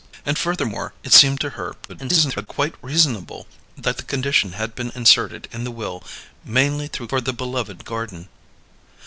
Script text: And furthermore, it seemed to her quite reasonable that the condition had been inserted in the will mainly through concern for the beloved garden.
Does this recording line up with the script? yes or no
no